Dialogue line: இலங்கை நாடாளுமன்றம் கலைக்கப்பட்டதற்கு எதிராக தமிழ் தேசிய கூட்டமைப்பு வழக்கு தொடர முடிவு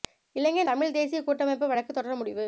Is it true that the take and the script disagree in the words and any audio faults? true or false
true